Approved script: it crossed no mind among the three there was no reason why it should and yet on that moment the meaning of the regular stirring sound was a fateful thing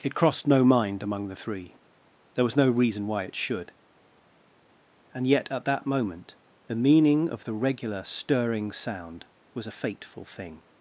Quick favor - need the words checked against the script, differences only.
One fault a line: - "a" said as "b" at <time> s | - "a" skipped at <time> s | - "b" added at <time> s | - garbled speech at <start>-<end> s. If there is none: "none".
- "on" said as "at" at 5.5 s